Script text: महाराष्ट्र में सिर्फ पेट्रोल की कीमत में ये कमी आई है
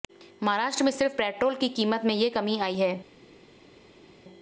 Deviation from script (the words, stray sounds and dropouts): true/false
false